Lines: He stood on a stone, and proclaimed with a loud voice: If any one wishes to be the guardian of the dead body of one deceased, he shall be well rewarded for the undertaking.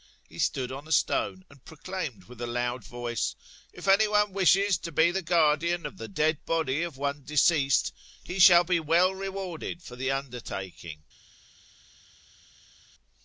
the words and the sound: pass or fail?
pass